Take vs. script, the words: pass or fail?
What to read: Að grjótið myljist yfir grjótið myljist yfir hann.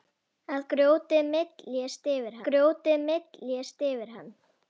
pass